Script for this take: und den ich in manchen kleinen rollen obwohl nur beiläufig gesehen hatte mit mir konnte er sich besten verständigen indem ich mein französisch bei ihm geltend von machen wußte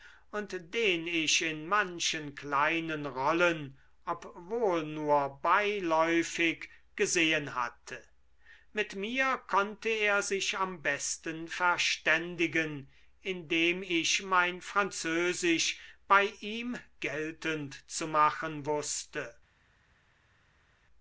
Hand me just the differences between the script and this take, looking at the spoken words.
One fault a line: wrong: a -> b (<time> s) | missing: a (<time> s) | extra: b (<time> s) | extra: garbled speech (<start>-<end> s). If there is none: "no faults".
extra: am (10.6 s)
wrong: von -> zu (17.9 s)